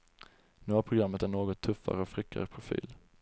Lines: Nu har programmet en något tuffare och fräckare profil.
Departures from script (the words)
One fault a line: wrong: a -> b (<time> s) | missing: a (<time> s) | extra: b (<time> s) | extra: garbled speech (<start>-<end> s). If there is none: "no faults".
no faults